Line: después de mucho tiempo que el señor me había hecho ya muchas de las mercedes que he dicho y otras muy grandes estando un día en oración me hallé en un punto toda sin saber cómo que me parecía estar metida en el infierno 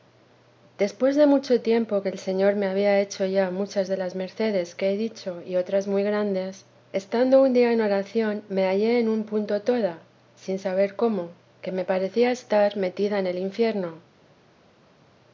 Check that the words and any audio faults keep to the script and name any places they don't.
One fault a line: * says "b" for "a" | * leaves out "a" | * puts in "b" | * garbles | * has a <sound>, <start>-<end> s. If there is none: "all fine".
all fine